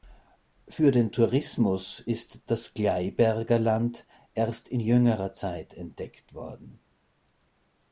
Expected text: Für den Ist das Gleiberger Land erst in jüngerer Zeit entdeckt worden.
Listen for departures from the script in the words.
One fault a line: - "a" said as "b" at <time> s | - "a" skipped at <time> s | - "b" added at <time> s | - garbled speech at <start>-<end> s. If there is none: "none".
- "Tourismus" added at 1.1 s